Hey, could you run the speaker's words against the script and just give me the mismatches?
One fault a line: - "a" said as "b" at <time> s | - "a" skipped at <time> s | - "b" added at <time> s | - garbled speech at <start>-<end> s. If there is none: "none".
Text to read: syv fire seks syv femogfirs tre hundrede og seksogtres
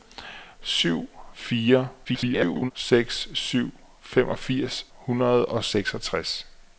- garbled speech at 2.0-2.7 s
- "tre" skipped at 4.9 s